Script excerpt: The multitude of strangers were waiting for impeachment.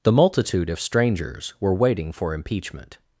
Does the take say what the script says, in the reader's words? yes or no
yes